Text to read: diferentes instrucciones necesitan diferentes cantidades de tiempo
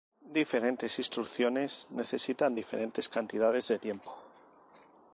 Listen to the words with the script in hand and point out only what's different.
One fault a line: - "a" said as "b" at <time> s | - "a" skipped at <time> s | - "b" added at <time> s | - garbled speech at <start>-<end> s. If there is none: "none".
none